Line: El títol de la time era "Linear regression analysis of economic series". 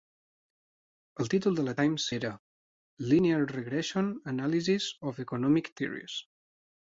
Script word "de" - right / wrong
right